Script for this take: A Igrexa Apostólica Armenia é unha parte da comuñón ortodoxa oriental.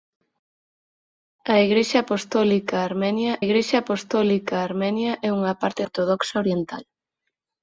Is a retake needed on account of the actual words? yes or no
yes